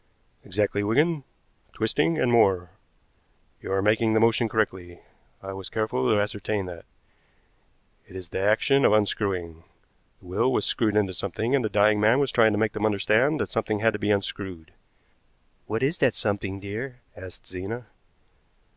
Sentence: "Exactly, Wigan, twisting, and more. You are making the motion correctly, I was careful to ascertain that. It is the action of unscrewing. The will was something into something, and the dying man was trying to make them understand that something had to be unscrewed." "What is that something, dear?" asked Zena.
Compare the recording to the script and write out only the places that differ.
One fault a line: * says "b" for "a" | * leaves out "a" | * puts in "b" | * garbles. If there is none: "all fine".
* says "screwed" for "something"